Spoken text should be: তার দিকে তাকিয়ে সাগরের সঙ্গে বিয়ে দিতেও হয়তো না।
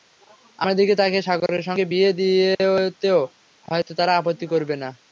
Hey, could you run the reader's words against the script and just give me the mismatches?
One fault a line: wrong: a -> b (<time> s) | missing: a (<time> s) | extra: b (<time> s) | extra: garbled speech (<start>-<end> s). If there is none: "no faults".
wrong: তার -> আমার (0.6 s)
extra: তারা আপত্তি করবে (4.0 s)